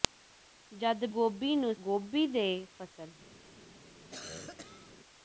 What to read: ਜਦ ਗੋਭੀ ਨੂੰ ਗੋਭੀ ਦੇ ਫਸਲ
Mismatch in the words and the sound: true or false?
true